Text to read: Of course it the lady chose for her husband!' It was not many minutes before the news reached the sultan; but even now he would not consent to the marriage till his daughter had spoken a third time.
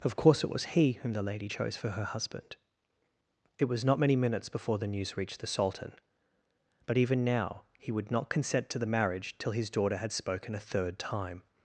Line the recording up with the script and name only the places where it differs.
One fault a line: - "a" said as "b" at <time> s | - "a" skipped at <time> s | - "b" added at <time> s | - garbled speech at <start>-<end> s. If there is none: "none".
- "was he whom" added at 0.5 s